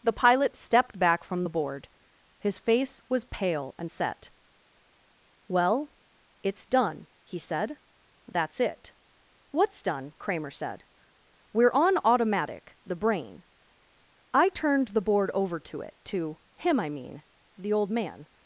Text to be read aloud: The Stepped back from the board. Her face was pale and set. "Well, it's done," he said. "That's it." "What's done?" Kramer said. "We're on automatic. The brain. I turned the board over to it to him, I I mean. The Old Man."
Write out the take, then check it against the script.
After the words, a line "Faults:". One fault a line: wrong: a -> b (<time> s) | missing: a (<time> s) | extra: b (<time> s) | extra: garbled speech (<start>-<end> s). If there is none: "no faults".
The Pilot stepped back from the board. His face was pale and set. "Well, it's done," he said. "That's it." "What's done?" Kramer said. "We're on automatic. The brain. I turned the board over to it to him, I mean. The Old Man."
Faults:
extra: Pilot (0.1 s)
wrong: Her -> His (2.4 s)
missing: I (16.9 s)